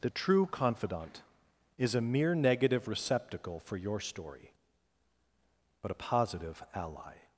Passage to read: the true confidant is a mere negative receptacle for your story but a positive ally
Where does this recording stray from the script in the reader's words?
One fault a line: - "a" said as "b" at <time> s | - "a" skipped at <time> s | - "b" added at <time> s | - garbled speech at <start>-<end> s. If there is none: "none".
none